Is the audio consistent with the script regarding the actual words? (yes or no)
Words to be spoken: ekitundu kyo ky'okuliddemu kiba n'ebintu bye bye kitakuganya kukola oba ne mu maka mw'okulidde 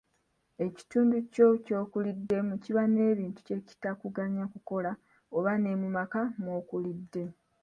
no